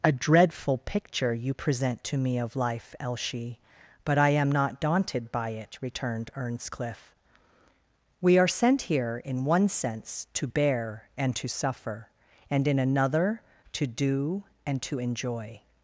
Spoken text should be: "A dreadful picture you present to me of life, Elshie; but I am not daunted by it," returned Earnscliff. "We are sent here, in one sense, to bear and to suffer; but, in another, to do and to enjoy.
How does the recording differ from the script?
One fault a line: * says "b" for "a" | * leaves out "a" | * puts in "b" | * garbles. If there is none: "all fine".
* says "and" for "but"